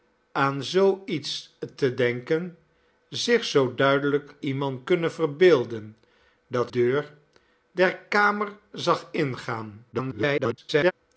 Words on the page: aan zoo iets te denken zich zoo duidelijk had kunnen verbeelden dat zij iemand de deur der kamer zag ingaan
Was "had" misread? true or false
true